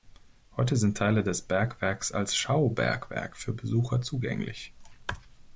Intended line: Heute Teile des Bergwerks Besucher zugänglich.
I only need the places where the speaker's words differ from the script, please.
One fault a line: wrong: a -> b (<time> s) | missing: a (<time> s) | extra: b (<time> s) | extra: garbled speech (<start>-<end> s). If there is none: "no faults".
extra: sind (0.8 s)
extra: als Schaubergwerk für (2.1 s)